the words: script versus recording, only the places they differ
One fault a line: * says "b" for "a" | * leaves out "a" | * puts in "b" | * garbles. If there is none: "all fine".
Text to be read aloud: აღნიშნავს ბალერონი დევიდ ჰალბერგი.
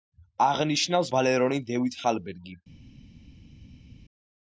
all fine